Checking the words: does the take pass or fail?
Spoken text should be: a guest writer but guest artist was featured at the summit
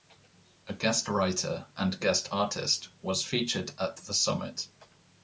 fail